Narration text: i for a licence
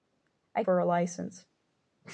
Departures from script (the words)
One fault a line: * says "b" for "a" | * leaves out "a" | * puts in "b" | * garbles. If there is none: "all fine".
all fine